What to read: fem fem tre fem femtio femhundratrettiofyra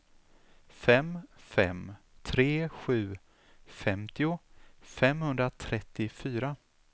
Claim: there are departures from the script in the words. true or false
true